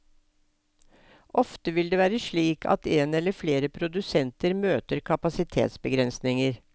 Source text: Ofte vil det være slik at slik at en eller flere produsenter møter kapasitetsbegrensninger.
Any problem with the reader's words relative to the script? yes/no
yes